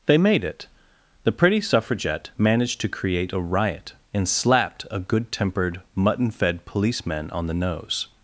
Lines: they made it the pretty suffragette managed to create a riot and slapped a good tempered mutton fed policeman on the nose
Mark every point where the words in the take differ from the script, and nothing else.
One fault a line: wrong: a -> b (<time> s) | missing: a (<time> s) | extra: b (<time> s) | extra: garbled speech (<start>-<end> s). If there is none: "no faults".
no faults